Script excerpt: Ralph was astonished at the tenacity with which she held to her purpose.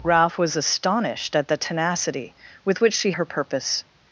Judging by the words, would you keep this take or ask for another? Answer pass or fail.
fail